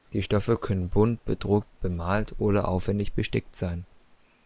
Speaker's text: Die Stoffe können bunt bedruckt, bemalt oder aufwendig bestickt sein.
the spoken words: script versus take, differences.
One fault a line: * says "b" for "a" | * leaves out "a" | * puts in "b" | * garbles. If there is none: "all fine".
all fine